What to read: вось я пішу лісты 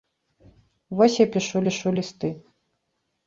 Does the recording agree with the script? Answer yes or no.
no